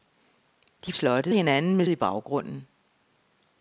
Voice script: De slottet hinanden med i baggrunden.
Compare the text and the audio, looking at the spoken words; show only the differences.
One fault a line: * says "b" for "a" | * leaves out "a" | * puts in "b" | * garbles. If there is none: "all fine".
all fine